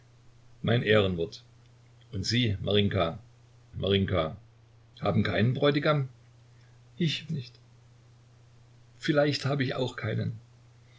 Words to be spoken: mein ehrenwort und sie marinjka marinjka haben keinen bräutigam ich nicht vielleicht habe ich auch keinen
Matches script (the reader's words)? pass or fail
pass